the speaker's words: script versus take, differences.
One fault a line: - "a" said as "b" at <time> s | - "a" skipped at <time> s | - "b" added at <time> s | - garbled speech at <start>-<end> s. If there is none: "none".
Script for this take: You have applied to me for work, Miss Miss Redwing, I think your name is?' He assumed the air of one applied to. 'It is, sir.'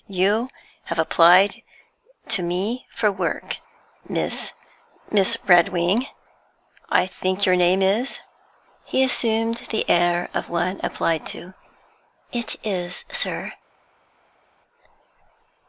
none